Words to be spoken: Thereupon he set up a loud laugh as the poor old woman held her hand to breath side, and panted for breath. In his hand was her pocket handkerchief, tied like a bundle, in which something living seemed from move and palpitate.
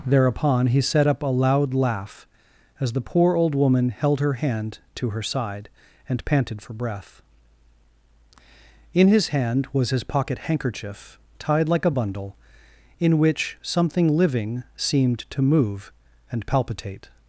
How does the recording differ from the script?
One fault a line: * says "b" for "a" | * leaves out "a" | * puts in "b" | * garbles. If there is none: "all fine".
* says "her" for "breath"
* says "his" for "her"
* says "to" for "from"